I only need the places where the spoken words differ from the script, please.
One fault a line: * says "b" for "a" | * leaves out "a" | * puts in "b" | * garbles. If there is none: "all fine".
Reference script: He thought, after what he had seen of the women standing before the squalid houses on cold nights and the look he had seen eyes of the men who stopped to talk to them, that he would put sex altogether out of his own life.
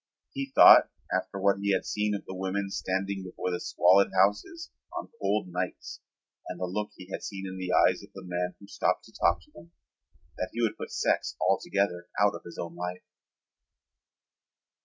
* puts in "in the"